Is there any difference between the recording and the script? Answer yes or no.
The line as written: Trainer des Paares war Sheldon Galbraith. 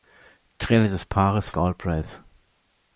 yes